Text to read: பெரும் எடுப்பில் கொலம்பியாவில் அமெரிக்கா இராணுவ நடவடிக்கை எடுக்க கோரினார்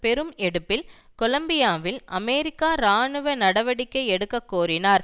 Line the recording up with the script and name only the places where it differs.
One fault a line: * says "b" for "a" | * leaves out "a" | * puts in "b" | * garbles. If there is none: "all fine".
all fine